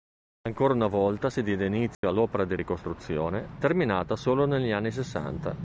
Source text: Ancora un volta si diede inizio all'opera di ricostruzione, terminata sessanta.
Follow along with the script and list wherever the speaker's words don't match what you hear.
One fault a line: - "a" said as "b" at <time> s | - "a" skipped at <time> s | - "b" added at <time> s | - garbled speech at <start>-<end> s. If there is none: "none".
- "un" said as "una" at 0.7 s
- "solo negli anni" added at 4.2 s